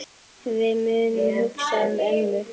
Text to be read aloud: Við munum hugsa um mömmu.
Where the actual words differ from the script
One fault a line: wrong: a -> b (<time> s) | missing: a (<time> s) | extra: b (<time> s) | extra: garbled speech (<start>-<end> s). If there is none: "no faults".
no faults